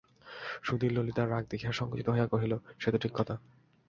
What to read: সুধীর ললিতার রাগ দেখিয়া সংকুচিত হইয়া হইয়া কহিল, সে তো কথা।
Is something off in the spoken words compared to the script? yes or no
yes